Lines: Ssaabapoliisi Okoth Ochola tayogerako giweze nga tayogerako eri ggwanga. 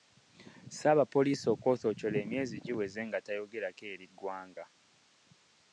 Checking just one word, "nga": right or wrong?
right